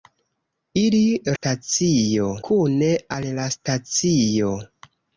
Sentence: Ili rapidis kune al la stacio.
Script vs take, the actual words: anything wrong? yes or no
yes